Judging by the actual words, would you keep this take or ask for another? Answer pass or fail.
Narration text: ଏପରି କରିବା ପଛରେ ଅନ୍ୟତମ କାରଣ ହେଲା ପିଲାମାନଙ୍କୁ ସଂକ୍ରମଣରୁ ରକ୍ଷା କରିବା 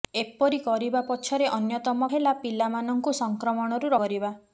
fail